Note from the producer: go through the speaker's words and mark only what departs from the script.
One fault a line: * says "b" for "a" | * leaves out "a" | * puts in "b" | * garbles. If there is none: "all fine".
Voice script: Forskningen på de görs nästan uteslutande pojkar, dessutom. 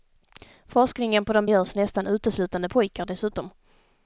all fine